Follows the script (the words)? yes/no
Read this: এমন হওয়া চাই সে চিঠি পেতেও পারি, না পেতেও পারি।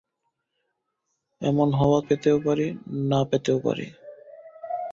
no